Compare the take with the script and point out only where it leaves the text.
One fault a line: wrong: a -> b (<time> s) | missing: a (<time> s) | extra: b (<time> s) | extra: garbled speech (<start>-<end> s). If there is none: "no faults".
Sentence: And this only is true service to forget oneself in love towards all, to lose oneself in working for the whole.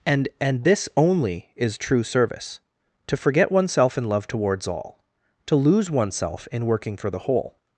extra: and (0.4 s)